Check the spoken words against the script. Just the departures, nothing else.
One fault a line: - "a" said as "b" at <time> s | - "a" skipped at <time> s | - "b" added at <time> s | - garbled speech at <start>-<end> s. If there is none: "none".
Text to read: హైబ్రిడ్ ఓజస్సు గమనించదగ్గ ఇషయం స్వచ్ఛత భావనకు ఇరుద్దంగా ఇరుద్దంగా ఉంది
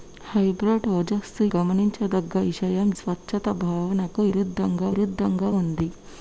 none